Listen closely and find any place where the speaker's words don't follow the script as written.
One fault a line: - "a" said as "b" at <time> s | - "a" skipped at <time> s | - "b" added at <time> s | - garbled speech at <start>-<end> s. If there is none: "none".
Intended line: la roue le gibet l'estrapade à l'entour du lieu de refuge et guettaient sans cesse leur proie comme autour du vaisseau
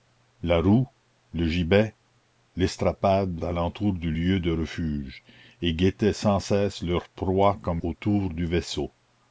none